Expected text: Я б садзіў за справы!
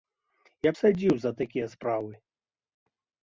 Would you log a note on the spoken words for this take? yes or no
yes